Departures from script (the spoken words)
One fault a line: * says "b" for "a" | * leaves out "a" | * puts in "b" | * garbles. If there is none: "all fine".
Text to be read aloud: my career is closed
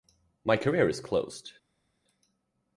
all fine